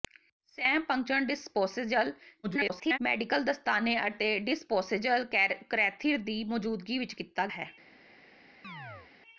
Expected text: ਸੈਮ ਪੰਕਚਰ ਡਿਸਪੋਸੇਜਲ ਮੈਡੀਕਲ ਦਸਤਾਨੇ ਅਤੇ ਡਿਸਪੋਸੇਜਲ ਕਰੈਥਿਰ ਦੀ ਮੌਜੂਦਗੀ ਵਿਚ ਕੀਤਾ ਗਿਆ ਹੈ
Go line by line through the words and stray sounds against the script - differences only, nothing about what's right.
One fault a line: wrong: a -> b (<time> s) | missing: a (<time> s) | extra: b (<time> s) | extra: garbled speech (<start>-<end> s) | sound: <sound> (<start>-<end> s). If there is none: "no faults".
extra: garbled speech (2.4-3.0 s)
missing: ਗਿਆ (7.5 s)
sound: chirp (8.6-9.1 s)